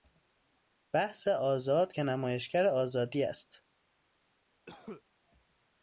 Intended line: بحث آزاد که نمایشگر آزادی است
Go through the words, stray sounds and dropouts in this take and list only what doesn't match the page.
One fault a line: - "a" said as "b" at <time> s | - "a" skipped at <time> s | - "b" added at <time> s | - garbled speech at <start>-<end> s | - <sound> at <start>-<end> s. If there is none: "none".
- cough at 4.7-5.0 s